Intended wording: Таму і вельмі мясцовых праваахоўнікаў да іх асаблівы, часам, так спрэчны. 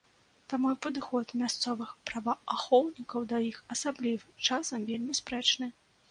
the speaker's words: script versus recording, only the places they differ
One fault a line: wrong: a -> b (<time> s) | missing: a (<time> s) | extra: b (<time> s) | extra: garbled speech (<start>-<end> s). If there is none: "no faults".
wrong: вельмі -> падыход (0.8 s)
wrong: так -> вельмі (4.9 s)